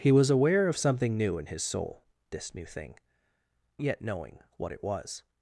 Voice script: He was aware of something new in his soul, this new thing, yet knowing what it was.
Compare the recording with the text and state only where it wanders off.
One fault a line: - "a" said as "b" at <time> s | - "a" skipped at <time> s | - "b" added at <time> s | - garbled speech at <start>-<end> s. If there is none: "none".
none